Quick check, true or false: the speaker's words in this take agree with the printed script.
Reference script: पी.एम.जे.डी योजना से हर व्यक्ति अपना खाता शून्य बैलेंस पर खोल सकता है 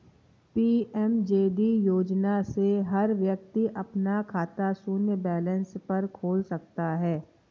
true